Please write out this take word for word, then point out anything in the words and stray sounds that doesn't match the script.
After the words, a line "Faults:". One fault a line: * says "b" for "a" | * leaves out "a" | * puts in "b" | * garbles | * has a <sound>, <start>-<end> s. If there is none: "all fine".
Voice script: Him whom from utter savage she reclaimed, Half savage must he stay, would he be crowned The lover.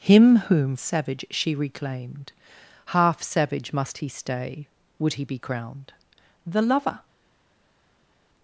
Him whom savage she reclaimed, Half savage must he stay, would he be crowned The lover.
Faults:
* leaves out "from utter"